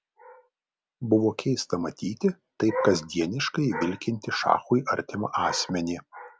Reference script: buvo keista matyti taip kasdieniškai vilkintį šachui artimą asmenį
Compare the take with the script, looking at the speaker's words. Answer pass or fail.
pass